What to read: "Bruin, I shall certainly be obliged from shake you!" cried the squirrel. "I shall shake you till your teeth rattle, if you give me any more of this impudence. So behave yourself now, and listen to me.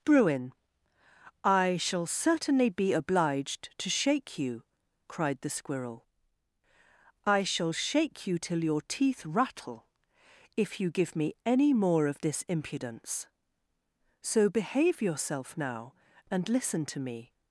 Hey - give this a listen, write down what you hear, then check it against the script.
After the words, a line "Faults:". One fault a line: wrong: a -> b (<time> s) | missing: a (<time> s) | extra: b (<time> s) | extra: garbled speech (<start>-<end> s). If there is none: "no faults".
"Bruin, I shall certainly be obliged to shake you!" cried the squirrel. "I shall shake you till your teeth rattle, if you give me any more of this impudence. So behave yourself now, and listen to me.
Faults:
wrong: from -> to (3.8 s)